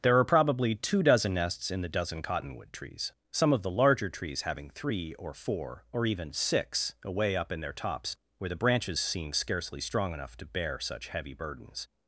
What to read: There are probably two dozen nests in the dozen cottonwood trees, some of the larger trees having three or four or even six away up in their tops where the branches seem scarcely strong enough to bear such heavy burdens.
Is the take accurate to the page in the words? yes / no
yes